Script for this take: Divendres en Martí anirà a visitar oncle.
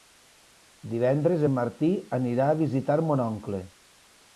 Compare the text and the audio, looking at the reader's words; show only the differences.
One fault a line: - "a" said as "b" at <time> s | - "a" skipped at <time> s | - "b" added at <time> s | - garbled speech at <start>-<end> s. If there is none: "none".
- "mon" added at 3.1 s